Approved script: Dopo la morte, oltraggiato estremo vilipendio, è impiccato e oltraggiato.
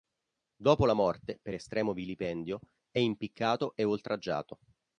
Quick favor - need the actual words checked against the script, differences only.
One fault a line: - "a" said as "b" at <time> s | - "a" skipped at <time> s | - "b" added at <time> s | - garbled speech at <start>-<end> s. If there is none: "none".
- "oltraggiato" said as "per" at 1.4 s